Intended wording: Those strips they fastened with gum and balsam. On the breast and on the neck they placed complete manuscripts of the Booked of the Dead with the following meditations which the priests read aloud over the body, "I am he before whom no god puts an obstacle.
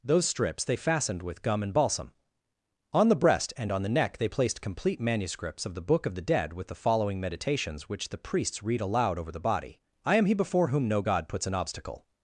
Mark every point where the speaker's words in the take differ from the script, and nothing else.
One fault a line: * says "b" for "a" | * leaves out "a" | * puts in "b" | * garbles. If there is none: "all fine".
* says "Book" for "Booked"